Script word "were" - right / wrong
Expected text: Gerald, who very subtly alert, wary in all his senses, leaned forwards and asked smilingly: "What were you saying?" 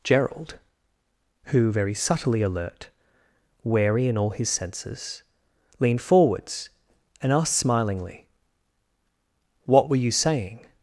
right